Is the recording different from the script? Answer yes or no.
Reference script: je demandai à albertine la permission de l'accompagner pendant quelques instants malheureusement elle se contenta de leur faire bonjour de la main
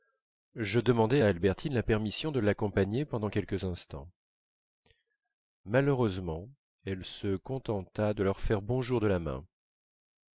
no